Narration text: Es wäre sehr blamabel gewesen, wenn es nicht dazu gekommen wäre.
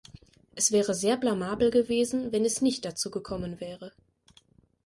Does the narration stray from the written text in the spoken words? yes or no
no